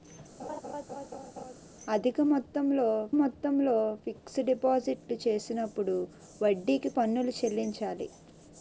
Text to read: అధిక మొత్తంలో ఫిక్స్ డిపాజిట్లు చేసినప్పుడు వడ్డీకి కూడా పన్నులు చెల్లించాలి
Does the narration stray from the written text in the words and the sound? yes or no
yes